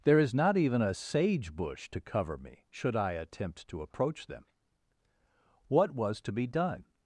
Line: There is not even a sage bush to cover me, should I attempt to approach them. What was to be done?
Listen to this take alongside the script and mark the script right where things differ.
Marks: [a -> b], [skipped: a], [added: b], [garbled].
There is not even a sage bush to cover me, should I attempt to approach them. What was to be done?